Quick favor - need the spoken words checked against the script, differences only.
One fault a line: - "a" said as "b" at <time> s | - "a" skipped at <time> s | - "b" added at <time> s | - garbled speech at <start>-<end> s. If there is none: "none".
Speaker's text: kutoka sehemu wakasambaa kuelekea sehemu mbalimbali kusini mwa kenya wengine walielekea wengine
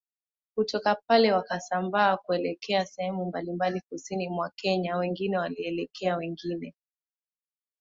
- "sehemu" said as "pale" at 1.1 s